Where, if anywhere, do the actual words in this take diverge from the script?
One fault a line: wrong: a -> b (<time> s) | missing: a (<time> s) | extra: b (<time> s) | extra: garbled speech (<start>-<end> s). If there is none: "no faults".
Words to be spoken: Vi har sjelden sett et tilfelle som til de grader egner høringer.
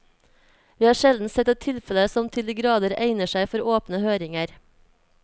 extra: seg for åpne (3.4 s)